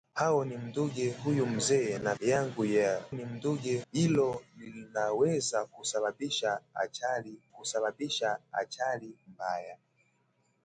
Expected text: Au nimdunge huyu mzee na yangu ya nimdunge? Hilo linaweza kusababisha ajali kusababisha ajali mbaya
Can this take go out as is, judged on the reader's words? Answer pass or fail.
pass